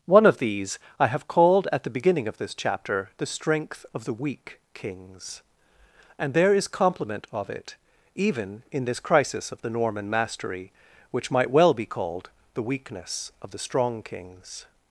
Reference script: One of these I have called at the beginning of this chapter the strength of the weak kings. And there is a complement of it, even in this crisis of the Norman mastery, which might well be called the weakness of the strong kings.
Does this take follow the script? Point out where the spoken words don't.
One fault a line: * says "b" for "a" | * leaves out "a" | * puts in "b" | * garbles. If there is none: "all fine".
* leaves out "a"